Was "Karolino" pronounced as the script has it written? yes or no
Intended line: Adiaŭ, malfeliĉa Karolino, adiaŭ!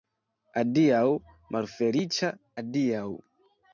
no